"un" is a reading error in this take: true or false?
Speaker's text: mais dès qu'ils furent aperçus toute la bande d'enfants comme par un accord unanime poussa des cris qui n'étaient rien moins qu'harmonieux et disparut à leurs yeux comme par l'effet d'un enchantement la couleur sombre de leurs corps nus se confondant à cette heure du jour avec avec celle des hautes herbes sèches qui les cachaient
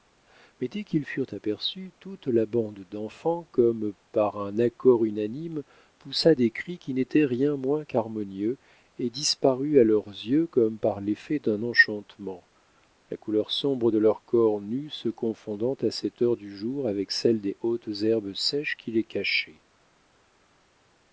false